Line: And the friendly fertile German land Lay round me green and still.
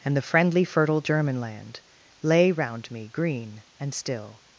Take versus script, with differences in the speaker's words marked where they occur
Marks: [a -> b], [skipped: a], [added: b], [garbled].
And the friendly fertile German land Lay round me green and still.